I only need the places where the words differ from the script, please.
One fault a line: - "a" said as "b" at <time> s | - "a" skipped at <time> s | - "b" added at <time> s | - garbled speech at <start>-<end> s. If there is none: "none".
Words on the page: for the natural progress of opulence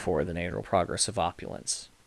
none